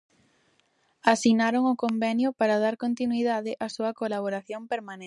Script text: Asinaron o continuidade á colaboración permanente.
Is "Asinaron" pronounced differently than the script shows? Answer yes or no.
no